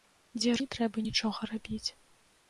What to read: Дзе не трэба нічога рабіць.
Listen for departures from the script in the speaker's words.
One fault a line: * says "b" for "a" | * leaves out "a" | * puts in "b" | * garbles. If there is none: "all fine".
all fine